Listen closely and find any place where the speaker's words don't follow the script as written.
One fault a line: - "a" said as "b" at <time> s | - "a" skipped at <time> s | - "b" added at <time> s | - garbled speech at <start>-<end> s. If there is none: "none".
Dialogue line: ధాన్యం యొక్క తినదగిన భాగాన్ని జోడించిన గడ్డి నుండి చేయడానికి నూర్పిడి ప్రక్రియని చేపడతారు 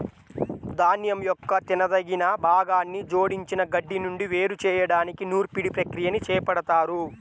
- "వేరు" added at 4.3 s